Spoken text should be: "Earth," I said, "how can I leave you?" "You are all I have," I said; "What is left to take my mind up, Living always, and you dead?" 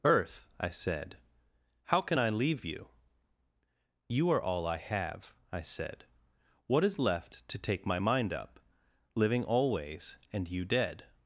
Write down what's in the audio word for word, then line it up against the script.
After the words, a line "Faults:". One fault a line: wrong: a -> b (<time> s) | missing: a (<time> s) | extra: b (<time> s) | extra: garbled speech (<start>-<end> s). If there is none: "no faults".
"Earth," I said, "how can I leave you?" "You are all I have," I said; "What is left to take my mind up, Living always, and you dead?"
Faults:
no faults